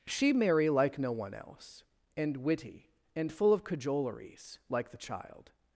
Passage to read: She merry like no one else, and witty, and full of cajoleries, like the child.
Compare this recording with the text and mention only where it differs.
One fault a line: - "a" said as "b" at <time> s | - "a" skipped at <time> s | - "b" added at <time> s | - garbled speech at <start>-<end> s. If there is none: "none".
none